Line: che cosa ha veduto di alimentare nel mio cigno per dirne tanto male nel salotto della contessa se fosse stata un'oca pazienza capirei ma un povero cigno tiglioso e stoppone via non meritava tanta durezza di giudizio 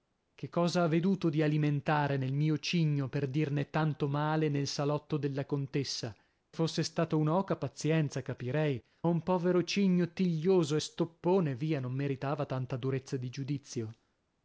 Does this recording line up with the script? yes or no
no